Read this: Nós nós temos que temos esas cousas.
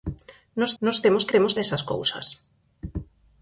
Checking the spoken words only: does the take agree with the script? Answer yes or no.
yes